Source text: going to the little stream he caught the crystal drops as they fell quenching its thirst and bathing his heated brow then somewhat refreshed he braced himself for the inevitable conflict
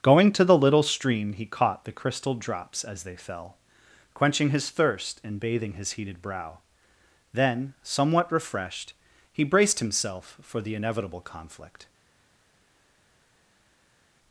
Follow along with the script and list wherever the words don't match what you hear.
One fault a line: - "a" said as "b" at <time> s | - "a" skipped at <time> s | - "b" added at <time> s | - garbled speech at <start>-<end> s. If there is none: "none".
- "its" said as "his" at 4.5 s